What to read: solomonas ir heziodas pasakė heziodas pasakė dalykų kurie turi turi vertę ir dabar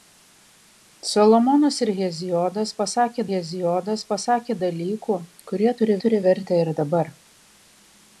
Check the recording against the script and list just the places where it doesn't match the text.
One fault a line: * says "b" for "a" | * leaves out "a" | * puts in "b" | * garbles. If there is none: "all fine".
all fine